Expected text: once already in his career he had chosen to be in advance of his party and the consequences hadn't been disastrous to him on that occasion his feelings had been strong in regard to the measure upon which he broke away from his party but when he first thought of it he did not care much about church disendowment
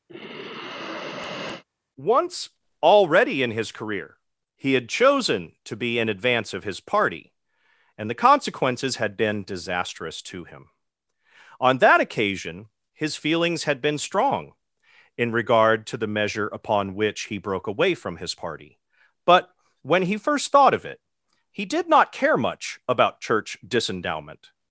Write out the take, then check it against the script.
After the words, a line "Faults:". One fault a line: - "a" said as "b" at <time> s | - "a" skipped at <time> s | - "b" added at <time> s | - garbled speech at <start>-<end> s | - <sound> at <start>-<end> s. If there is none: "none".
once already in his career he had chosen to be in advance of his party and the consequences had been disastrous to him on that occasion his feelings had been strong in regard to the measure upon which he broke away from his party but when he first thought of it he did not care much about church disendowment
Faults:
- sigh at 0.1-1.6 s
- "hadn't" said as "had" at 9.0 s